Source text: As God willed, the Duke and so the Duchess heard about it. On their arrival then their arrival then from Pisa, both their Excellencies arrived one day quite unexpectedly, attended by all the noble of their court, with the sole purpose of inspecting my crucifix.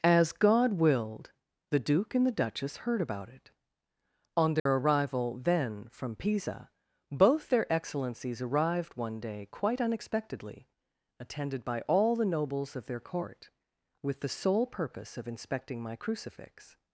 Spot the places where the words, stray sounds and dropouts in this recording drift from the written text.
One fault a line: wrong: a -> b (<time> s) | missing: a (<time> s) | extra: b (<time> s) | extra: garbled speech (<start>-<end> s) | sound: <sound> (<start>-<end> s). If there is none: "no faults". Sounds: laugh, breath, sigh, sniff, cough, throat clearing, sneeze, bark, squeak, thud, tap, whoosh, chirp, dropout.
missing: so (2.2 s)
sound: dropout (4.6-4.7 s)
missing: their arrival then (5.9 s)
wrong: noble -> nobles (12.2 s)